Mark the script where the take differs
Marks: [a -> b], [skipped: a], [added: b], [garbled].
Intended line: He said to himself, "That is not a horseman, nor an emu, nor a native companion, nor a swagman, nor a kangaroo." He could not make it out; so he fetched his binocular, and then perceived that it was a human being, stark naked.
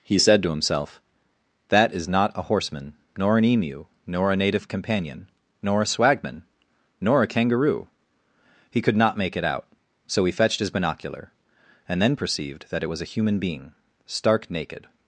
He said to himself, "That is not a horseman, nor an emu, nor a native companion, nor a swagman, nor a kangaroo." He could not make it out; so he fetched his binocular, and then perceived that it was a human being, stark naked.